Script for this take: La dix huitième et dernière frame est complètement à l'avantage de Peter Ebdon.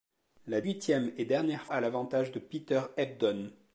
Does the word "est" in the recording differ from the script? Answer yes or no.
yes